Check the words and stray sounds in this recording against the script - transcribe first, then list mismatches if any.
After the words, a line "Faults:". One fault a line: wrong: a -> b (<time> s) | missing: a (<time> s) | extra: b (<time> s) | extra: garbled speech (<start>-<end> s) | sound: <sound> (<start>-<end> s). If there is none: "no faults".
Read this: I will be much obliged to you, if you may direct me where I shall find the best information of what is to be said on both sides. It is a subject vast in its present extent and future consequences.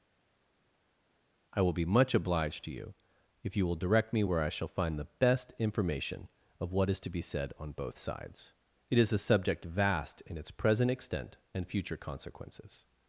I will be much obliged to you, if you will direct me where I shall find the best information of what is to be said on both sides. It is a subject vast in its present extent and future consequences.
Faults:
wrong: may -> will (3.6 s)